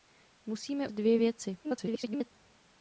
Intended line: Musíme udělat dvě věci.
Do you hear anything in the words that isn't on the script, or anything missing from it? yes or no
yes